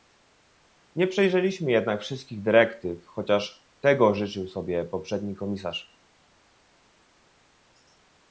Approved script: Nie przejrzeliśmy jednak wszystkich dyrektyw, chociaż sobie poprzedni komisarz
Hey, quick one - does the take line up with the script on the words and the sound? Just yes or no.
no